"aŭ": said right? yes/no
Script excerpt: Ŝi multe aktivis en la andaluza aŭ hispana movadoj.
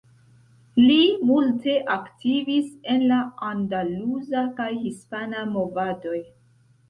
no